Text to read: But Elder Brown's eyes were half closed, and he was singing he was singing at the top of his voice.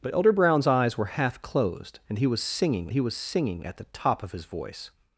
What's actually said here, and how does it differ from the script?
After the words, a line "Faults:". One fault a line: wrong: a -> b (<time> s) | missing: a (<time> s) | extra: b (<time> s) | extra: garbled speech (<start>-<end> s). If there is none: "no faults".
But Elder Brown's eyes were half closed, and he was singing he was singing at the top of his voice.
Faults:
no faults